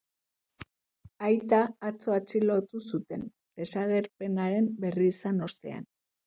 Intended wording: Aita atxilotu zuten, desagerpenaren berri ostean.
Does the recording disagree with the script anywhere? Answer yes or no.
yes